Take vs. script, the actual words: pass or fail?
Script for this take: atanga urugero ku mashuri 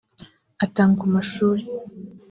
fail